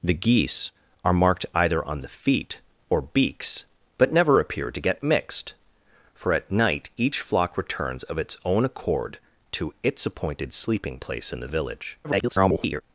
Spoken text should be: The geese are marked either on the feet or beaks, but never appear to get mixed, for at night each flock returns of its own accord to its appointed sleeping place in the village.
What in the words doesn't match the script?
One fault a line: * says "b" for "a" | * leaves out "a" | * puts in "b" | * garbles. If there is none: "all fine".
* garbles